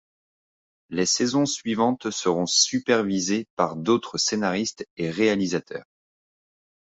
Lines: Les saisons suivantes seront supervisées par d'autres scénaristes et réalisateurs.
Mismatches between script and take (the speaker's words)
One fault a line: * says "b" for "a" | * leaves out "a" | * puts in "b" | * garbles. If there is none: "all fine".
all fine